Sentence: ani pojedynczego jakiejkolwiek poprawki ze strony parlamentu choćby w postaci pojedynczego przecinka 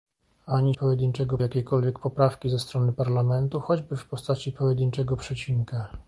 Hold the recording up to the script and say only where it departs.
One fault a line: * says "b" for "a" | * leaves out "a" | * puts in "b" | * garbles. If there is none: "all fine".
all fine